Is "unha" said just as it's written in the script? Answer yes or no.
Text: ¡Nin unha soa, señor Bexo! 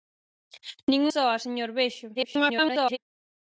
no